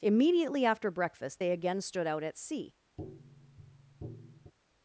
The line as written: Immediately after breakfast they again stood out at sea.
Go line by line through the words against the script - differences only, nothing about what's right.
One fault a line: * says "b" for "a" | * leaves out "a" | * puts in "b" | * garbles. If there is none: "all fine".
all fine